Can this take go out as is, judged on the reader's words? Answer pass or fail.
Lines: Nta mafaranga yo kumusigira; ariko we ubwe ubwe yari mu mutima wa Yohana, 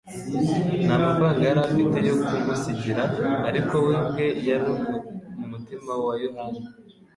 fail